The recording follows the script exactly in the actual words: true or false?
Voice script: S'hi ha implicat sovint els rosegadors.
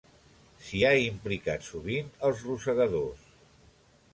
true